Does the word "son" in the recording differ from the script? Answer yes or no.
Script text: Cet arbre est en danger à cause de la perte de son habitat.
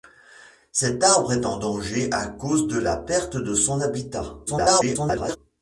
no